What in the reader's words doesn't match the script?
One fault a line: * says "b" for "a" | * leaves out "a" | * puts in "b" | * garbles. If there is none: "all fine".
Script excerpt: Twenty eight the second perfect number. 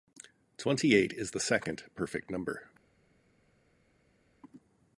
* puts in "is"